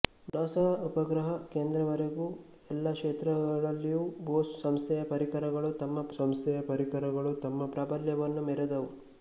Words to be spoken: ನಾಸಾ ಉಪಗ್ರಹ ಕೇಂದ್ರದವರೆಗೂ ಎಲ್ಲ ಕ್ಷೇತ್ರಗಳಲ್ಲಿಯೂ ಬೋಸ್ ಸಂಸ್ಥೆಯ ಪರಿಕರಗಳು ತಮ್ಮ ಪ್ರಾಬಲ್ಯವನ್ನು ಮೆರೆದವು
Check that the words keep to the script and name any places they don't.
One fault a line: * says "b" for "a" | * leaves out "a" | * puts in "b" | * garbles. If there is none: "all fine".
* puts in "ಸಂಸ್ಥೆಯ ಪರಿಕರಗಳು ತಮ್ಮ"